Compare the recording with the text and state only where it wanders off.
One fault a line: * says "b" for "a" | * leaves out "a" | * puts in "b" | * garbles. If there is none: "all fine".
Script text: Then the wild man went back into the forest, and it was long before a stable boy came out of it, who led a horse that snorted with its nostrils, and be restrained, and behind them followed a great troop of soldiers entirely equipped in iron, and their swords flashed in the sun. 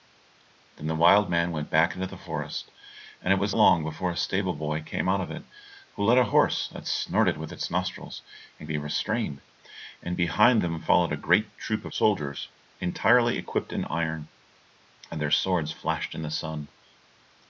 all fine